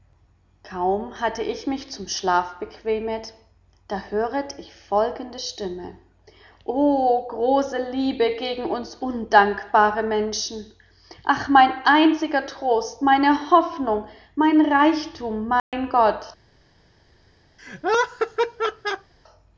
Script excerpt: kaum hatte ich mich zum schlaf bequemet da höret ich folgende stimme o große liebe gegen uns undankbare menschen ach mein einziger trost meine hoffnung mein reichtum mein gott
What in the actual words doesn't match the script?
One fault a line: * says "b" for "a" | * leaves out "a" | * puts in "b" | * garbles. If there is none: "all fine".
all fine